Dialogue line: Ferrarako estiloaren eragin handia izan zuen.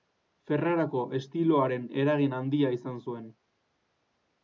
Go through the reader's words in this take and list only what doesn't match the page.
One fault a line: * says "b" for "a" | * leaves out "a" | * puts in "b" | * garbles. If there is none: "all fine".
all fine